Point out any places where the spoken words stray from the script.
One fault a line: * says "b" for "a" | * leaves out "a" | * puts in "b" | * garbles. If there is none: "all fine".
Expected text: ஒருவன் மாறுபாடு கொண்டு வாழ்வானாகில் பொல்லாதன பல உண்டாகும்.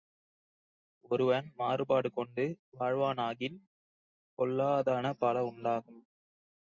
all fine